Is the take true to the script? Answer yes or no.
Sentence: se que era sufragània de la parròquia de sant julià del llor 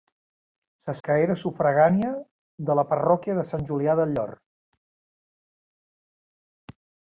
yes